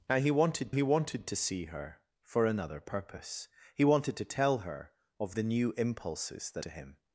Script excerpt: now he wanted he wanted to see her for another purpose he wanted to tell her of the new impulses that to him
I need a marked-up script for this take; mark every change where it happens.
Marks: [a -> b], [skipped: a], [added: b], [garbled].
now he wanted he wanted to see her for another purpose he wanted to tell her of the new impulses that to him